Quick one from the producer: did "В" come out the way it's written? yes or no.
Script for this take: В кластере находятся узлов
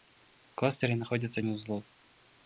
yes